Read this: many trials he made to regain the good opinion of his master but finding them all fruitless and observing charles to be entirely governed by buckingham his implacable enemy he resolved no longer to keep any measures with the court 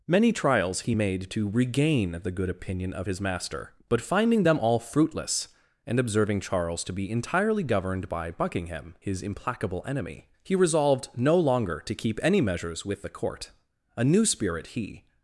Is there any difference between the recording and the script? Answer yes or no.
yes